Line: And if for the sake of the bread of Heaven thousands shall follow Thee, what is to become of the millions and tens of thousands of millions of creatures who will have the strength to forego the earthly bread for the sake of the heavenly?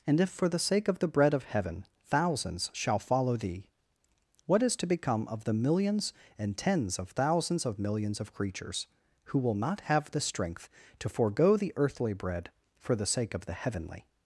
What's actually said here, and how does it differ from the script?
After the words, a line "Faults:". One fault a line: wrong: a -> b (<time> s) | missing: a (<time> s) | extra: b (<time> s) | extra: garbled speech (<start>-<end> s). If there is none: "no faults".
And if for the sake of the bread of Heaven thousands shall follow Thee, what is to become of the millions and tens of thousands of millions of creatures who will not have the strength to forego the earthly bread for the sake of the heavenly?
Faults:
extra: not (9.6 s)